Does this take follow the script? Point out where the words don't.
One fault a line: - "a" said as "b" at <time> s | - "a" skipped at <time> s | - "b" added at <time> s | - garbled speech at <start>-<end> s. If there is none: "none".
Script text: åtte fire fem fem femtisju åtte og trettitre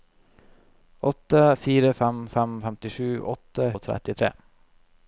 none